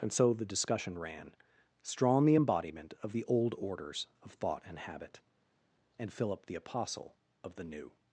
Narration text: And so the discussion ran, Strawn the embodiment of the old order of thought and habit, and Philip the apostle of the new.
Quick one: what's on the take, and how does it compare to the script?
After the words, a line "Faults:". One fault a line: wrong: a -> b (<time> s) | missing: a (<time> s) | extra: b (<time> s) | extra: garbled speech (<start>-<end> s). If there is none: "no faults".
And so the discussion ran, Strawn the embodiment of the old orders of thought and habit, and Philip the apostle of the new.
Faults:
wrong: order -> orders (3.6 s)